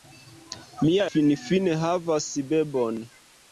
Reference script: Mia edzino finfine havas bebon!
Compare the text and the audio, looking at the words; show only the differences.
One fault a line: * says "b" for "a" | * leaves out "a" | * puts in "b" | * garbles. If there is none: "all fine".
* leaves out "edzino"